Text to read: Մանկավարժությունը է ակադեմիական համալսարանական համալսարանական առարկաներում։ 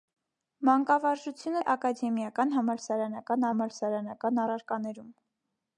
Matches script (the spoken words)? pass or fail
pass